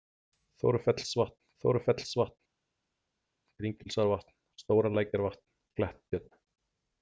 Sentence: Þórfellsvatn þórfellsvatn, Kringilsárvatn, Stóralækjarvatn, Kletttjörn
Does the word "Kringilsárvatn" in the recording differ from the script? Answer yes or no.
no